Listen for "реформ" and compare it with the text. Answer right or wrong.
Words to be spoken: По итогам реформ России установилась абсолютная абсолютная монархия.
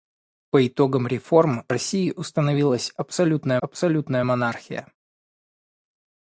right